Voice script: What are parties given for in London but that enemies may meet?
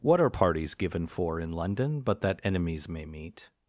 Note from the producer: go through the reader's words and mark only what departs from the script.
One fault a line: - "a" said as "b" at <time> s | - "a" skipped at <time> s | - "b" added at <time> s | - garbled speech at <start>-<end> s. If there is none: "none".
none